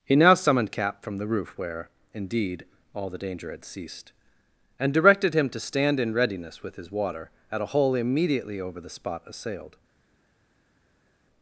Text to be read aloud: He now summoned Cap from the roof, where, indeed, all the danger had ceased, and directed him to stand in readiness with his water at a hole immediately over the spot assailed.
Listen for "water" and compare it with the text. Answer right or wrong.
right